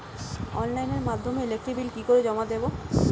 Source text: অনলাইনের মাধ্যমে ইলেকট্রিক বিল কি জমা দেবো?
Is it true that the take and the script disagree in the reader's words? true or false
true